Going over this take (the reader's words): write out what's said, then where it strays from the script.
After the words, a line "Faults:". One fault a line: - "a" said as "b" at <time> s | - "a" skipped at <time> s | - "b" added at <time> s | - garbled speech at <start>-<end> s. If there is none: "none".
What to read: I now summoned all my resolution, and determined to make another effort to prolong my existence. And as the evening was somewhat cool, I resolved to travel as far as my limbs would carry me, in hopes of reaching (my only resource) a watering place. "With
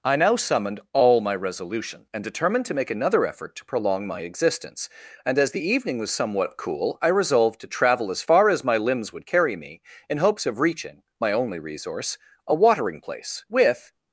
I now summoned all my resolution, and determined to make another effort to prolong my existence. And as the evening was somewhat cool, I resolved to travel as far as my limbs would carry me, in hopes of reaching (my only resource) a watering place. "With
Faults:
none